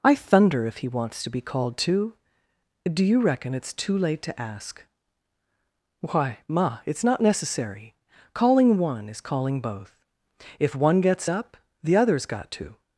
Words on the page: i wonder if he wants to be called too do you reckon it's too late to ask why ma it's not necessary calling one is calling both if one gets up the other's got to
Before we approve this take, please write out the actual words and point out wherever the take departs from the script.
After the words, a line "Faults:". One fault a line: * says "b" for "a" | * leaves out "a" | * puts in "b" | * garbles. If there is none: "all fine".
i thunder if he wants to be called too do you reckon it's too late to ask why ma it's not necessary calling one is calling both if one gets up the other's got to
Faults:
* says "thunder" for "wonder"